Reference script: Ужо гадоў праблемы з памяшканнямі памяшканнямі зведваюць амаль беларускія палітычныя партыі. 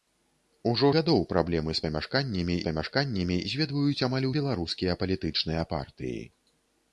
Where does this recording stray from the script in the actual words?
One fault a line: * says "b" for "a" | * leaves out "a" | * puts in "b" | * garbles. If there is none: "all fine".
all fine